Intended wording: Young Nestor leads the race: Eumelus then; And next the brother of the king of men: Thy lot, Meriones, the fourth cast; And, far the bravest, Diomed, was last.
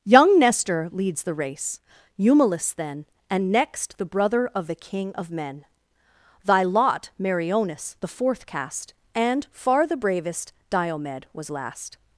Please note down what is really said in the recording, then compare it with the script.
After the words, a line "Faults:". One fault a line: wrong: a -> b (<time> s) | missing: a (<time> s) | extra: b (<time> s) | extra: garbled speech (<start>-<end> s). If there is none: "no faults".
Young Nestor leads the race: Eumelus then; And next the brother of the king of men: Thy lot, Meriones, the fourth cast; And, far the bravest, Diomed, was last.
Faults:
no faults